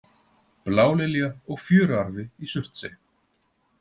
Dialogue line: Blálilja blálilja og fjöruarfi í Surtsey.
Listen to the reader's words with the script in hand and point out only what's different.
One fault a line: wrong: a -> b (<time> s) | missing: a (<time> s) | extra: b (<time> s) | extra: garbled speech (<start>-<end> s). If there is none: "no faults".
missing: blálilja (1.3 s)